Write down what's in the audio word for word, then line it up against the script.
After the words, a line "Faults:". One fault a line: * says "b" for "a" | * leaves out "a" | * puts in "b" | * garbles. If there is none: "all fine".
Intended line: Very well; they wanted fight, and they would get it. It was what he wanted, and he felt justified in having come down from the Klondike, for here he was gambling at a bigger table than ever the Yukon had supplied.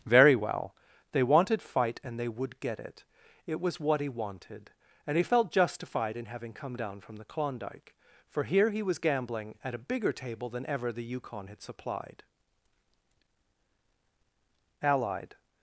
Very well; they wanted fight, and they would get it. It was what he wanted, and he felt justified in having come down from the Klondike, for here he was gambling at a bigger table than ever the Yukon had supplied. Allied
Faults:
* puts in "Allied"